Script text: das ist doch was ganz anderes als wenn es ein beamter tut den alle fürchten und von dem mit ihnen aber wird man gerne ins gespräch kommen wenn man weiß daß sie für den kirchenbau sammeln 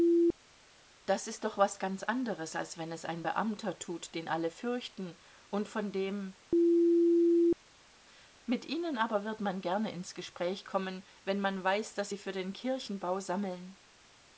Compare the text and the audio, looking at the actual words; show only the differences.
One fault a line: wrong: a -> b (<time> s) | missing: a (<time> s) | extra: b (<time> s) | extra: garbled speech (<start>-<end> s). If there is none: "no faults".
no faults